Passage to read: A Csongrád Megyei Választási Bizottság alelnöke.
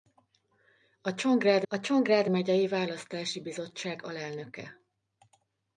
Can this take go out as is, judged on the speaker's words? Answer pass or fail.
fail